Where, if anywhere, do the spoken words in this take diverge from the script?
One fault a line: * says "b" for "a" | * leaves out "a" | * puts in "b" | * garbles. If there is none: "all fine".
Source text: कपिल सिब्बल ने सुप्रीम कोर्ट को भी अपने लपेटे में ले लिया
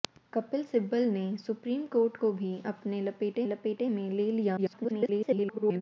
* puts in "लपेटे"
* garbles